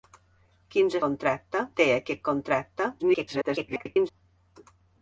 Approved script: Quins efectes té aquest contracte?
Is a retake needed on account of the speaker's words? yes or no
yes